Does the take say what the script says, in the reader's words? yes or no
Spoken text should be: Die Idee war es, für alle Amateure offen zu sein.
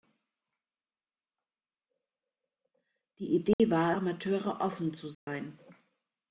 no